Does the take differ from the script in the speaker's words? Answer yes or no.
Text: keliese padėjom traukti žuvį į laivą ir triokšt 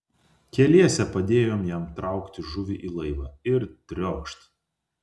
yes